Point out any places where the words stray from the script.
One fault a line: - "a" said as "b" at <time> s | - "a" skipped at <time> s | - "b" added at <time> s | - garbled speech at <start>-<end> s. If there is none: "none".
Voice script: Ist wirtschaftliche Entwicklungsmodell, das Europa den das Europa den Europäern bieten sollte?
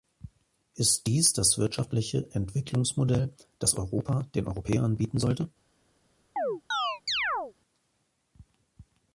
- "wirtschaftliche Entwicklungsmodell" said as "dies" at 1.1 s
- "Europa den" said as "wirtschaftliche Entwicklungsmodell" at 1.6 s